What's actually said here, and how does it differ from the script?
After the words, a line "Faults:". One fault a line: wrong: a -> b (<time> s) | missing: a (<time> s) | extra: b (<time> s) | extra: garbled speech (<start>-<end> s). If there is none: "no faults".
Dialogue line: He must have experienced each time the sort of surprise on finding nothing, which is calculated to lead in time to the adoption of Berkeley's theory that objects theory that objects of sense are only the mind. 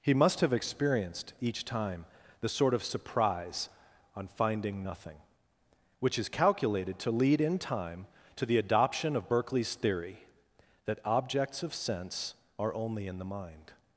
He must have experienced each time the sort of surprise on finding nothing, which is calculated to lead in time to the adoption of Berkeley's theory that objects of sense are only in the mind.
Faults:
missing: theory that objects (11.6 s)
extra: in (13.1 s)